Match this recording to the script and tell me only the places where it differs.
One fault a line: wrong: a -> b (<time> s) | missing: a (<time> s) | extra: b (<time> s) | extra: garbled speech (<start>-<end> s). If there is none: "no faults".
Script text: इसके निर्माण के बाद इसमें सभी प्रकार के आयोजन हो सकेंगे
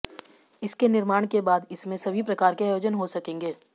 no faults